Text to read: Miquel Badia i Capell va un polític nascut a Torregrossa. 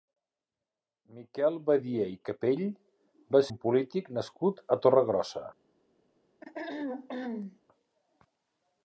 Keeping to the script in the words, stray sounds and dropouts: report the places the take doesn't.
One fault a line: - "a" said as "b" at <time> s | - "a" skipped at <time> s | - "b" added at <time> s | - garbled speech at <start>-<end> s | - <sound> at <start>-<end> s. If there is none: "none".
- throat clearing at 6.4-7.6 s